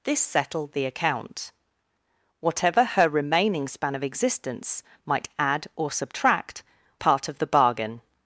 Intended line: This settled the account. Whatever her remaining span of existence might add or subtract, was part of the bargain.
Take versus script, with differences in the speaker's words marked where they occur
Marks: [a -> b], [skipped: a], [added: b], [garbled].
This settled the account. Whatever her remaining span of existence might add or subtract, [skipped: was] part of the bargain.